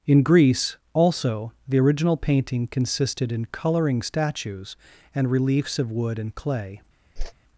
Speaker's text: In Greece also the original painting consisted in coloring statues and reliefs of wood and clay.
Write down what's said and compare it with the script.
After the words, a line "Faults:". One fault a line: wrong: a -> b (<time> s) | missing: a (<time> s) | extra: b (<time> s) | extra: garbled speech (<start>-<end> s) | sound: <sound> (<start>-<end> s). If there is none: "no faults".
In Greece also the original painting consisted in coloring statues and reliefs of wood and clay.
Faults:
sound: whoosh (7.2-7.3 s)